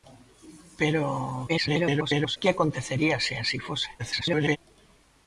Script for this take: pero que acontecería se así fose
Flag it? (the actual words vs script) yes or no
yes